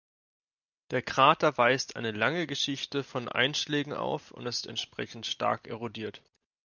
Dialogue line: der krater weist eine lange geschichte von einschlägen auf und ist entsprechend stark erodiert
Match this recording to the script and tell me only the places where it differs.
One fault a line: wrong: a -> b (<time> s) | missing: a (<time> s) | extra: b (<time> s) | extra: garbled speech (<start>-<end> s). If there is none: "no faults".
no faults